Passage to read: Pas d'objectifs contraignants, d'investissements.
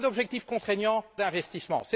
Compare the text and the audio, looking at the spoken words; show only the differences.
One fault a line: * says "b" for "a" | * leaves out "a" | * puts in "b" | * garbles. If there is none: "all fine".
all fine